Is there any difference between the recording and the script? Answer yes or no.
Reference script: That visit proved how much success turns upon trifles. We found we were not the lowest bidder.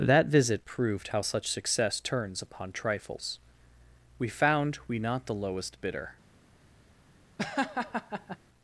yes